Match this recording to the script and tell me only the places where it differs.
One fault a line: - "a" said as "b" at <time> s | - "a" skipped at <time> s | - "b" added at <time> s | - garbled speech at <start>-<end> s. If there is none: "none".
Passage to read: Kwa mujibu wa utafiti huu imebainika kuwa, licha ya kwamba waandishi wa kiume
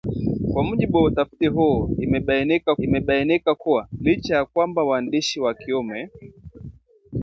- "imebainika" added at 2.8 s